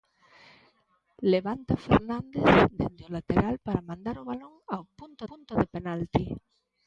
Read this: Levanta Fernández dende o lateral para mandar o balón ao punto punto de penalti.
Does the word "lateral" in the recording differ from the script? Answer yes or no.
no